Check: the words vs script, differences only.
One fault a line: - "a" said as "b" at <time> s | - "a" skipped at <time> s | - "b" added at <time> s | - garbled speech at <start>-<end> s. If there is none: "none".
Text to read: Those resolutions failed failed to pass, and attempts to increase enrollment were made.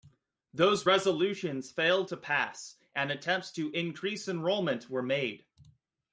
- "failed" skipped at 2.1 s